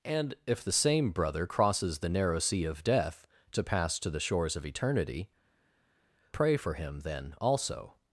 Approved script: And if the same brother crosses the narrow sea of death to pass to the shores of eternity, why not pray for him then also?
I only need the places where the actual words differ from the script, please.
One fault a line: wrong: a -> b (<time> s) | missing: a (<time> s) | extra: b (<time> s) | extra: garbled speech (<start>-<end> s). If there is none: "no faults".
missing: why not (5.3 s)